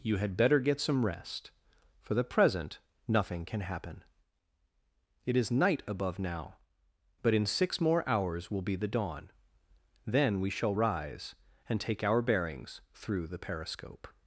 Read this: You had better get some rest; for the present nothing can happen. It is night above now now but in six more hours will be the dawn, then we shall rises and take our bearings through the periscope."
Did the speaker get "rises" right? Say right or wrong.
wrong